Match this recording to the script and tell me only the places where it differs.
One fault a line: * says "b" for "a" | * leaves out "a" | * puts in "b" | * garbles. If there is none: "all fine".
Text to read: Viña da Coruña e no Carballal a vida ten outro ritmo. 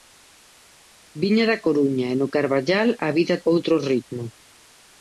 * leaves out "ten"